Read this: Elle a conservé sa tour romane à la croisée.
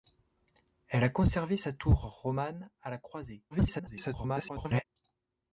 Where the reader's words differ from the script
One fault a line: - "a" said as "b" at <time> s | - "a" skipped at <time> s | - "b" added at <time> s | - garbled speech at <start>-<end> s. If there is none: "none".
- garbled speech at 3.5-4.9 s